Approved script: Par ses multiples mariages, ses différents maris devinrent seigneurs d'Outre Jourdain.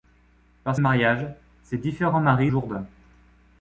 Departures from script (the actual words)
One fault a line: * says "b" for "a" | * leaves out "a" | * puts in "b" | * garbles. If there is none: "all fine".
* leaves out "ses multiples"
* leaves out "devinrent seigneurs d'Outre"